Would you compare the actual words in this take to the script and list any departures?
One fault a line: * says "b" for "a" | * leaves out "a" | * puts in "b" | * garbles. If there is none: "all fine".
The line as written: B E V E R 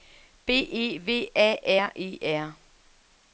* puts in "A R"